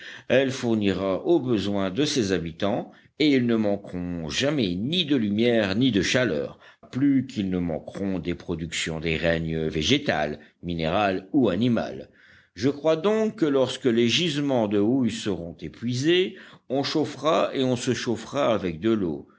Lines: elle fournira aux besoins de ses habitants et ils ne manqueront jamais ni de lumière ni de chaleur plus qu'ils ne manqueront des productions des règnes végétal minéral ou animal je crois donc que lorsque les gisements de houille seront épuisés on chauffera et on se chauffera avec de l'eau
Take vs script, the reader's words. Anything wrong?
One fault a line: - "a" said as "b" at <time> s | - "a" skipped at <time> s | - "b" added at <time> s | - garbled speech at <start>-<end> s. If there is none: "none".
none